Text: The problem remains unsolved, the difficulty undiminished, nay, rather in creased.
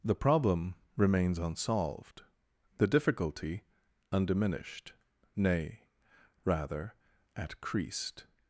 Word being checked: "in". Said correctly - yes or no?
no